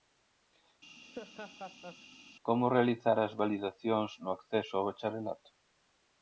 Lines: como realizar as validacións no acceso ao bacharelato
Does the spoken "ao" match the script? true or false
true